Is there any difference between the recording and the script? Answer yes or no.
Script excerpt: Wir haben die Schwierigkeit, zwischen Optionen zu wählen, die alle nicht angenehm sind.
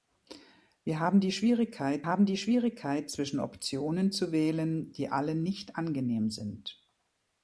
yes